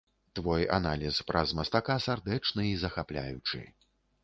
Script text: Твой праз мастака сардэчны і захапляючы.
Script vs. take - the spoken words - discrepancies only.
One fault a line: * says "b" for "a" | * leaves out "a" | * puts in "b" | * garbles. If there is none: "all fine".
* puts in "аналіз"